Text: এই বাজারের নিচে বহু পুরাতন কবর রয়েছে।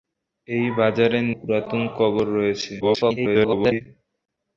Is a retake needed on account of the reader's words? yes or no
yes